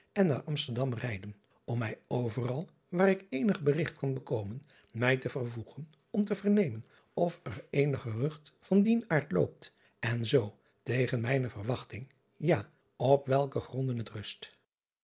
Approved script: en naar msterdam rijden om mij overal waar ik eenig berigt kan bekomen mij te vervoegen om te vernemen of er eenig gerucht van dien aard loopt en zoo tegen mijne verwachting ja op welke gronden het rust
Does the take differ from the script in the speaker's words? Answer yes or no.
no